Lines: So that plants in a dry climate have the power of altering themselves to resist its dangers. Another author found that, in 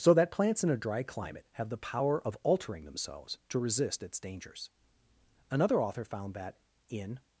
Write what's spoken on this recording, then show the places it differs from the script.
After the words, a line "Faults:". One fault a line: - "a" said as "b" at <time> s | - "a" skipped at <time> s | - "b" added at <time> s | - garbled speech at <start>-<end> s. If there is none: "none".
So that plants in a dry climate have the power of altering themselves to resist its dangers. Another author found that, in
Faults:
none